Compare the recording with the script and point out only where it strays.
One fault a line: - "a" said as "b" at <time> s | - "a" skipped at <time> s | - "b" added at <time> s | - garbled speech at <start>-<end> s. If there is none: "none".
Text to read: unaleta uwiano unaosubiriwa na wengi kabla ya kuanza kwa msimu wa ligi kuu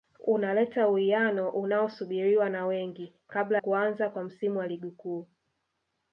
- "ya" skipped at 3.6 s